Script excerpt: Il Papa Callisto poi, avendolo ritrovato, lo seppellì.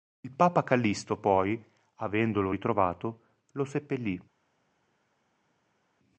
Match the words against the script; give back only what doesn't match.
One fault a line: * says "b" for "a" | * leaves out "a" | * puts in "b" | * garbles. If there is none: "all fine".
all fine